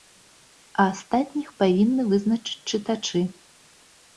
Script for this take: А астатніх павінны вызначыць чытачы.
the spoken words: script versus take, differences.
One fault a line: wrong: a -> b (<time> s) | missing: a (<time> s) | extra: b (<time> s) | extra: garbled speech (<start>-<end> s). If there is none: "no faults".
no faults